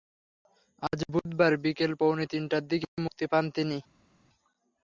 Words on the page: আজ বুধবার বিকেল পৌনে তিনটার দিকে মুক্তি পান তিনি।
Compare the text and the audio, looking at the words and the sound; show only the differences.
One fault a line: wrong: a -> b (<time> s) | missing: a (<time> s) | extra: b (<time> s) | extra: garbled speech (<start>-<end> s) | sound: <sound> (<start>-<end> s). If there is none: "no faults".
no faults